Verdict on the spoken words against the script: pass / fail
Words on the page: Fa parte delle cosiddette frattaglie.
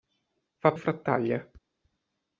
fail